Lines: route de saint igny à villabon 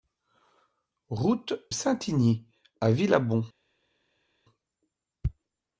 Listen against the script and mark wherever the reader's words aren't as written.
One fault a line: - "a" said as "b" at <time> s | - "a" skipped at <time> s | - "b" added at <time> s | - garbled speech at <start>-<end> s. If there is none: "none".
- "de" skipped at 1.5 s